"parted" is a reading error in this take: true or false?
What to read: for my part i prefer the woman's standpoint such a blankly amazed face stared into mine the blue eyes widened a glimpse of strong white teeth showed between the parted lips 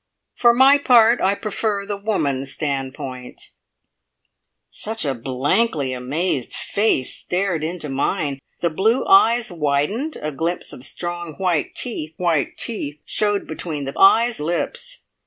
true